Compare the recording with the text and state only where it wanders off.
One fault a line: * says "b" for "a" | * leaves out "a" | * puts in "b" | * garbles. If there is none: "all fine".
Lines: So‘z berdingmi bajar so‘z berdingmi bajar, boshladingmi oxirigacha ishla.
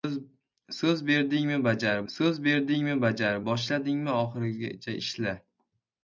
all fine